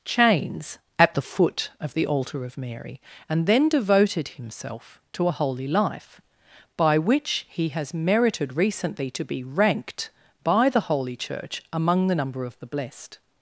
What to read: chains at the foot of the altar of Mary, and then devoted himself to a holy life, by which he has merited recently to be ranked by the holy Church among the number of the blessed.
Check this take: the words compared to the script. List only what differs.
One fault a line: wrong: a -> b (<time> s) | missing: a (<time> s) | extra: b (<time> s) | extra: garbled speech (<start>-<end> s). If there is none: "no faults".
no faults